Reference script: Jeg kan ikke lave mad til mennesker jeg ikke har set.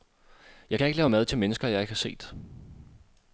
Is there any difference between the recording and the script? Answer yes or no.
no